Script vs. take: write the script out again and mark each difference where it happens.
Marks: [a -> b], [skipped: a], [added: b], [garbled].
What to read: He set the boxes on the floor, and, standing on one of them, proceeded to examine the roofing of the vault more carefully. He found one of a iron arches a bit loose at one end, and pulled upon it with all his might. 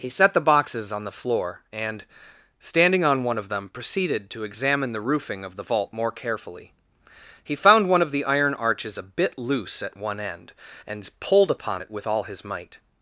He set the boxes on the floor, and, standing on one of them, proceeded to examine the roofing of the vault more carefully. He found one of [a -> the] iron arches a bit loose at one end, and pulled upon it with all his might.